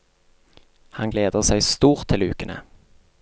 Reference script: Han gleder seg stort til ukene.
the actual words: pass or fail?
pass